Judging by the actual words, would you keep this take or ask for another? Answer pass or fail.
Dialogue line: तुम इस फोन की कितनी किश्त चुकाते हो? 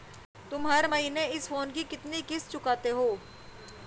fail